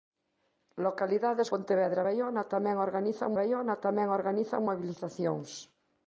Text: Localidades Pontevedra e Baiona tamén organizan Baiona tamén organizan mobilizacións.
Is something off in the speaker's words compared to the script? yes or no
no